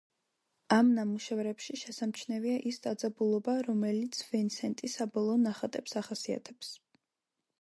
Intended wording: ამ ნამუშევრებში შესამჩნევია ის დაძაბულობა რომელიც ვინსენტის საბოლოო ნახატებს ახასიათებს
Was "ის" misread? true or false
false